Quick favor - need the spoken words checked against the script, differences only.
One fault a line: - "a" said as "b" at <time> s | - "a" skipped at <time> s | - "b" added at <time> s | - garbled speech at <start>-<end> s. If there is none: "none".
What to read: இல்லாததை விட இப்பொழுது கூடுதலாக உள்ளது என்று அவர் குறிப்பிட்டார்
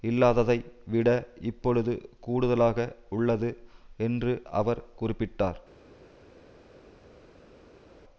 none